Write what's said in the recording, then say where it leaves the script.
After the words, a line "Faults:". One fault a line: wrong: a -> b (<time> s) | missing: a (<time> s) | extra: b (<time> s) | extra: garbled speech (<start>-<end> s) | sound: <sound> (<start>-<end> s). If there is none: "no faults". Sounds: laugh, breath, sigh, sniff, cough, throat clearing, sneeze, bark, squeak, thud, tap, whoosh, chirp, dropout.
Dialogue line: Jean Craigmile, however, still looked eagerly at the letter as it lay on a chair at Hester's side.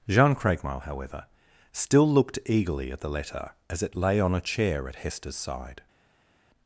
Jean Craigmile, however, still looked eagerly at the letter as it lay on a chair at Hester's side.
Faults:
no faults